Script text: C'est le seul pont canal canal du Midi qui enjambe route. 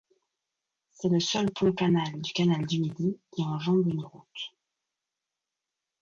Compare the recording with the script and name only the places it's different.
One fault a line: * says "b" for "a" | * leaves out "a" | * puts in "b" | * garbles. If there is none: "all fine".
* puts in "du"
* puts in "une"